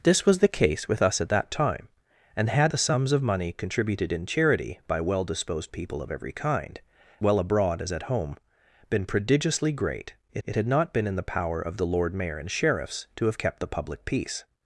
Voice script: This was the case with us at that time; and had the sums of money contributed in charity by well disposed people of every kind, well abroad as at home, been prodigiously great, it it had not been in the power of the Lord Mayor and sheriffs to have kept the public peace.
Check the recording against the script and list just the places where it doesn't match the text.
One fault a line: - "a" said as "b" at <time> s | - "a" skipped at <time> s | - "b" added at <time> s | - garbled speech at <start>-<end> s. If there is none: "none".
none